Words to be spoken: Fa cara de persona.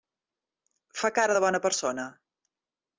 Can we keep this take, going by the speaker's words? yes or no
no